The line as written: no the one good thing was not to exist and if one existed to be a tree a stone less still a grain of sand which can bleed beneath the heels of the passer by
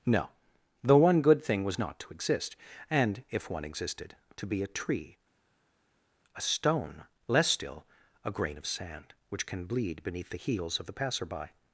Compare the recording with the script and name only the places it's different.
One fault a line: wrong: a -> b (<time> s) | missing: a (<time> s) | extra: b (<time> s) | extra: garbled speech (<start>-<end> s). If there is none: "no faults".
no faults